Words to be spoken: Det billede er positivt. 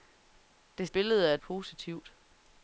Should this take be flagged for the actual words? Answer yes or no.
no